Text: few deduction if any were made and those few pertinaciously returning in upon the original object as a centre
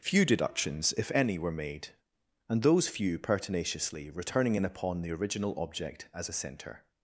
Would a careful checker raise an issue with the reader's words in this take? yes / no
yes